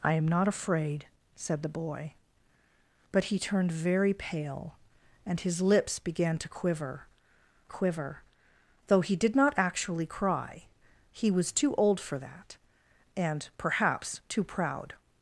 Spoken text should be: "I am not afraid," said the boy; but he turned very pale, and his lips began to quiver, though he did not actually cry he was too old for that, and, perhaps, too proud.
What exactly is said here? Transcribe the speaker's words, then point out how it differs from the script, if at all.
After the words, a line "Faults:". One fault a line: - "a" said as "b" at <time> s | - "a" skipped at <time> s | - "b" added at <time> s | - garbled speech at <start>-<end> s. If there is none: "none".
"I am not afraid," said the boy; but he turned very pale, and his lips began to quiver quiver, though he did not actually cry he was too old for that, and, perhaps, too proud.
Faults:
- "quiver" added at 7.7 s